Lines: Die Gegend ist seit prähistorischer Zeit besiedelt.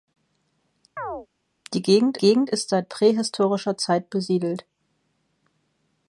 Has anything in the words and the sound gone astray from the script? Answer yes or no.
yes